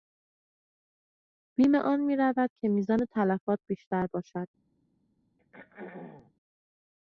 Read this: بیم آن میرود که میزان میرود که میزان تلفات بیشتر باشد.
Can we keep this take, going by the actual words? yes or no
no